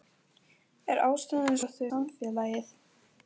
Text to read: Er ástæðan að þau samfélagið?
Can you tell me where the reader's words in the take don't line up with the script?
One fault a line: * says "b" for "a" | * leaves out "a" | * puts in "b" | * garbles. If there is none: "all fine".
all fine